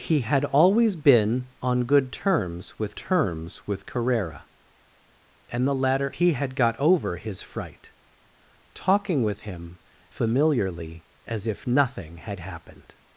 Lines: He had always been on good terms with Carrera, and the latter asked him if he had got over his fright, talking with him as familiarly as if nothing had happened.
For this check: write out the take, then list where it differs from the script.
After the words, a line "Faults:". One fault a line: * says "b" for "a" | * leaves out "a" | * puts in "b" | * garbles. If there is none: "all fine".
He had always been on good terms with terms with Carrera, and the latter he had got over his fright, talking with him familiarly as if nothing had happened.
Faults:
* puts in "terms with"
* leaves out "asked him if"
* leaves out "as"